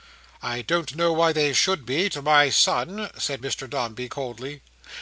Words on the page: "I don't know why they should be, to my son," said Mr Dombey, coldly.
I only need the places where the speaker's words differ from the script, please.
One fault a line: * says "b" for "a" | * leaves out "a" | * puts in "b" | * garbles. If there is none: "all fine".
all fine